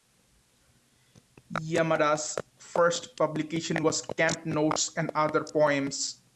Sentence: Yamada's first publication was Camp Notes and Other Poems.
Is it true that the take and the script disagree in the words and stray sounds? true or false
false